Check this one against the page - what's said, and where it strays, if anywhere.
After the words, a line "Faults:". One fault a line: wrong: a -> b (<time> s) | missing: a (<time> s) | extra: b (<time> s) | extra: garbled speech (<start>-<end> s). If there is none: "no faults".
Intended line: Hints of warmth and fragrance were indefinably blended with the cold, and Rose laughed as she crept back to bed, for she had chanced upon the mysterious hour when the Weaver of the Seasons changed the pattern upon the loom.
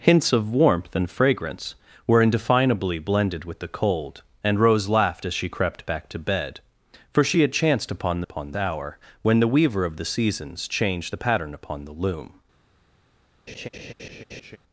Hints of warmth and fragrance were indefinably blended with the cold, and Rose laughed as she crept back to bed, for she had chanced upon the upon hour when the Weaver of the Seasons changed the pattern upon the loom.
Faults:
wrong: mysterious -> upon (8.2 s)